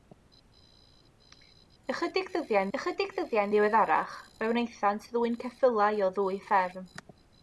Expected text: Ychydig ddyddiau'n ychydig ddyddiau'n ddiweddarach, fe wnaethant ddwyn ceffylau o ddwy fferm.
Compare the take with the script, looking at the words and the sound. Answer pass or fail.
pass